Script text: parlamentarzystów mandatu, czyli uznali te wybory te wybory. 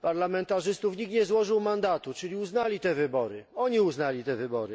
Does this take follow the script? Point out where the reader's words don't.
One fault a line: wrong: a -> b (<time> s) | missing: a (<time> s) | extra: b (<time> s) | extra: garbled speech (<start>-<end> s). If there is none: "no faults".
extra: nikt nie złożył (1.0 s)
extra: oni uznali (3.5 s)